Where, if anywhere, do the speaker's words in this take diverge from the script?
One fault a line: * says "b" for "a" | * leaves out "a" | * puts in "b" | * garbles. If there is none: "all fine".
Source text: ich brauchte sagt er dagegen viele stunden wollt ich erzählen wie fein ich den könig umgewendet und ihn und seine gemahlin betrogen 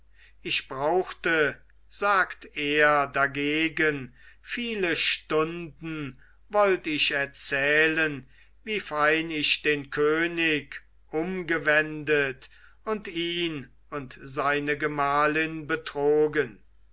all fine